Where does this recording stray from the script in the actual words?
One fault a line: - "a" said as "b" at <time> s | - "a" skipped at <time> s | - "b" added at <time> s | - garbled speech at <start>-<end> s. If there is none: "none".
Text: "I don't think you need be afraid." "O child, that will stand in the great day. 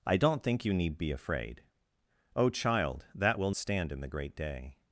none